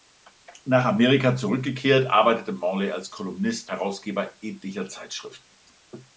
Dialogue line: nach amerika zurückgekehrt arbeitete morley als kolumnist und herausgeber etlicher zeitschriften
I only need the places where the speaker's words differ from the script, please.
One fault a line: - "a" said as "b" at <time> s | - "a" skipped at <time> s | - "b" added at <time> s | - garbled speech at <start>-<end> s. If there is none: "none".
- "und" skipped at 3.7 s